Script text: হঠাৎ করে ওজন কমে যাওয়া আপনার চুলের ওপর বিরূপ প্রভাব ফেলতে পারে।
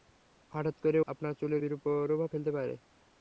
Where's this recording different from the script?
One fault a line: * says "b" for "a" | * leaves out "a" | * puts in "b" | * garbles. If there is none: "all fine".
* leaves out "ওজন কমে যাওয়া"
* leaves out "ওপর"